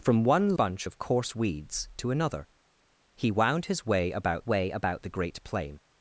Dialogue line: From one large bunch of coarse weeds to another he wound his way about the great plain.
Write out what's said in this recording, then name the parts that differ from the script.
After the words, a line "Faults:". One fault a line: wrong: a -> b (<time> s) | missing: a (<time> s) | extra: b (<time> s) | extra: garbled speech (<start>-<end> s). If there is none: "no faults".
From one bunch of coarse weeds to another he wound his way about way about the great plain.
Faults:
missing: large (0.6 s)
extra: way about (4.5 s)